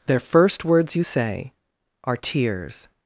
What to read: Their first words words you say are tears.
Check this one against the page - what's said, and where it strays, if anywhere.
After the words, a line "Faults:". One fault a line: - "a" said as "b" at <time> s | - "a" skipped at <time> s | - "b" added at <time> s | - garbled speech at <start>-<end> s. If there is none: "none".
Their first words you say are tears.
Faults:
- "words" skipped at 0.9 s